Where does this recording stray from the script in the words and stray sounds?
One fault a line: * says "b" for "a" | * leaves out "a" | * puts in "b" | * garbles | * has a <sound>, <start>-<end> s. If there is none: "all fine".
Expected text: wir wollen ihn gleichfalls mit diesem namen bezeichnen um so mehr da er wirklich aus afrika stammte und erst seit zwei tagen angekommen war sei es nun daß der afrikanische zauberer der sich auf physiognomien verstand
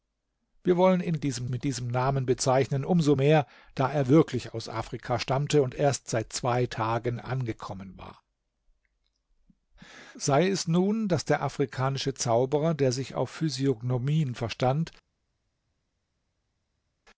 * says "diesem" for "gleichfalls"